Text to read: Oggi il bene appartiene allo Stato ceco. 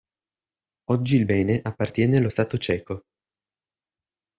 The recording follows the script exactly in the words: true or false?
true